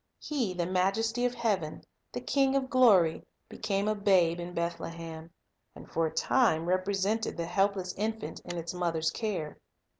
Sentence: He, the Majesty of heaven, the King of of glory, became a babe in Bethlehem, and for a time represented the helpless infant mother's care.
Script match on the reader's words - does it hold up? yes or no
no